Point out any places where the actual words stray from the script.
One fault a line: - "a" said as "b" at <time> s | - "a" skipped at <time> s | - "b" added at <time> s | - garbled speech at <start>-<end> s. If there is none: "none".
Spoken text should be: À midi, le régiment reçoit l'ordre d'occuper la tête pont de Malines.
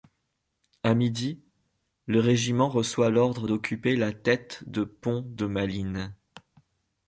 - "de" added at 4.7 s